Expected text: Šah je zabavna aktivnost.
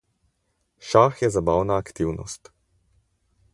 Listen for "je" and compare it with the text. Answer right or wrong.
right